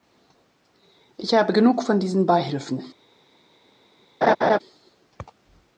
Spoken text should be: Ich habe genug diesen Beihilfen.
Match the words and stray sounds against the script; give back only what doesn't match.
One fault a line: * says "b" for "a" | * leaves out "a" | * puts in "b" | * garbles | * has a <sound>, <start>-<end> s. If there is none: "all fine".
* puts in "von"
* has a laugh, 4.2-4.6 s